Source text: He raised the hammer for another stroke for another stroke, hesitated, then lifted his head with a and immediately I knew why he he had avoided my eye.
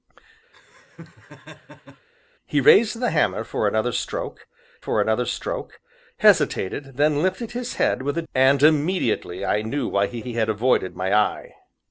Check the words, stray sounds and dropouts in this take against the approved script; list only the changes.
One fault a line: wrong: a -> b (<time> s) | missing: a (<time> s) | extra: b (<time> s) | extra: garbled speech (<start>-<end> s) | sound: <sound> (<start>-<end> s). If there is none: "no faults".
sound: laugh (0.5-2.1 s)